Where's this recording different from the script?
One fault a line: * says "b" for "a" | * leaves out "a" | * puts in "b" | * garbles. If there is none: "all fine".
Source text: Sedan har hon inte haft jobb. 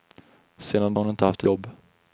all fine